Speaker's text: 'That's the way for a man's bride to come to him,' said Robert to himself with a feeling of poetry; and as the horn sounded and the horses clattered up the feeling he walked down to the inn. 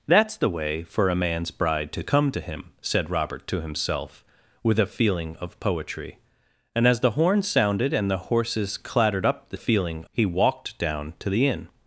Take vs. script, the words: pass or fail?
pass